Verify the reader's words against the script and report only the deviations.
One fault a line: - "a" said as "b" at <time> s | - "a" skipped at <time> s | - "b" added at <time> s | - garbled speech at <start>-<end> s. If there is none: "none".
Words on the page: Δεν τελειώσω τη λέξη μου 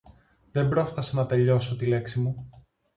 - "πρόφθασα να" added at 0.7 s